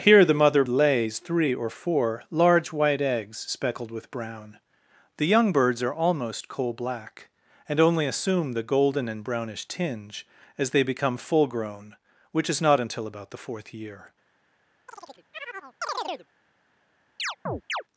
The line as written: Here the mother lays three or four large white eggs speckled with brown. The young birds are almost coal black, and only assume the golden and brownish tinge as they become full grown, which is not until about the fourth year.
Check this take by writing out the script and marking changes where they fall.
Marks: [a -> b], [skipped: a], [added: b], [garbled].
Here the mother lays three or four large white eggs speckled with brown. The young birds are almost coal black, and only assume the golden and brownish tinge as they become full grown, which is not until about the fourth year.